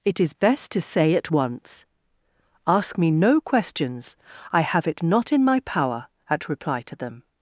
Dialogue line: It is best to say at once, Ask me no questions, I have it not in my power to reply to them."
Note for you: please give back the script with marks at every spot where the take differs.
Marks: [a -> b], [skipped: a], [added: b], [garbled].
It is best to say at once, Ask me no questions, I have it not in my power [to -> at] reply to them."